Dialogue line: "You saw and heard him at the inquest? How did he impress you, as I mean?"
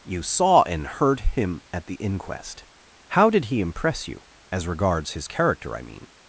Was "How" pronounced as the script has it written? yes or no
yes